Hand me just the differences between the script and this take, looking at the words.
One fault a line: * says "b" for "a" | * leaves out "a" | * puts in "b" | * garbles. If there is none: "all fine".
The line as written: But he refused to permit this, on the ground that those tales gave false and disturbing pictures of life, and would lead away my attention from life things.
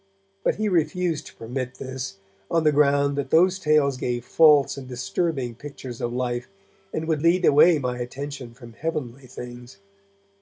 * says "heavenly" for "life"